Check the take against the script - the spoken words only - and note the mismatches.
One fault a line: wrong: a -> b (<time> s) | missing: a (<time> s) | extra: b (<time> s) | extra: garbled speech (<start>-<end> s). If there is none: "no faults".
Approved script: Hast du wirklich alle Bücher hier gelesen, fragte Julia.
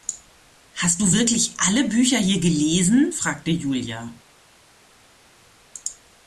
no faults